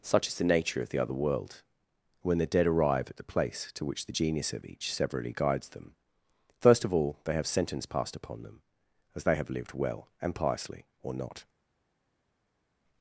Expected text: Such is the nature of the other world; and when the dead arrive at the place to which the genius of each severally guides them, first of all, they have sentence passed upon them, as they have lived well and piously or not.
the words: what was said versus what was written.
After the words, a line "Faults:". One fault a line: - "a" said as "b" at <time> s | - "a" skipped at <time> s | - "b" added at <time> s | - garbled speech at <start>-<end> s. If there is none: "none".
Such is the nature of the other world; when the dead arrive at the place to which the genius of each severally guides them, first of all, they have sentence passed upon them, as they have lived well and piously or not.
Faults:
- "and" skipped at 1.6 s